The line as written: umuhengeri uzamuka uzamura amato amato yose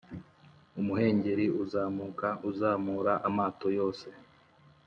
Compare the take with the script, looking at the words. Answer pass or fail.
fail